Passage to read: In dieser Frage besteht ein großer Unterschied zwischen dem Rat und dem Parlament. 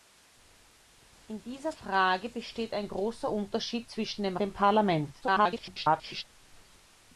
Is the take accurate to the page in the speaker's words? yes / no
no